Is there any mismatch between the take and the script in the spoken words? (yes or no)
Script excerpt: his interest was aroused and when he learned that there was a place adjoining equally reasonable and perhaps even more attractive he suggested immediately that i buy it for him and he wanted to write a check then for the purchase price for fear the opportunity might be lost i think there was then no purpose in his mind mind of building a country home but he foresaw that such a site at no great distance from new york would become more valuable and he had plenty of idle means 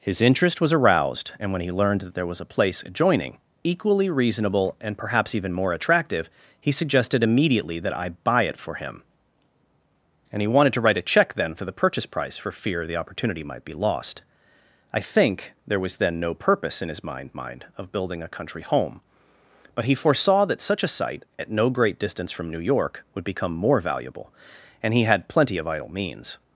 no